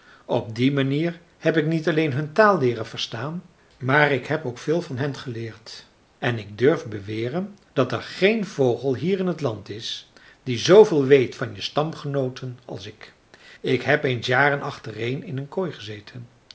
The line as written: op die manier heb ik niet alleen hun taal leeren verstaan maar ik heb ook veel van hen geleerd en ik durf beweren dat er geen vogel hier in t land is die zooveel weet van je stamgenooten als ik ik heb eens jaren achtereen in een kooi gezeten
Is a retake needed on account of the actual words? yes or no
no